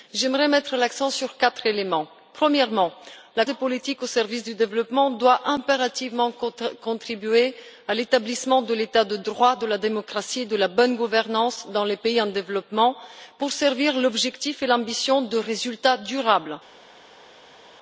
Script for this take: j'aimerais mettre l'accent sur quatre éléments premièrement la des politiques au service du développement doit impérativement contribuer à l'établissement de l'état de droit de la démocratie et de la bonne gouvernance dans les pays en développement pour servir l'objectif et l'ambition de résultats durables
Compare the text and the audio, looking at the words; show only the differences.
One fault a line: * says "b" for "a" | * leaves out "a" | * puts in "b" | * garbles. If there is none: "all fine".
all fine